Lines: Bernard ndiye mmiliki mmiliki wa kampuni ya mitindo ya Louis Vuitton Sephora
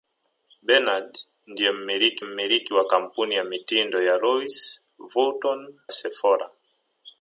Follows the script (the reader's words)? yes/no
yes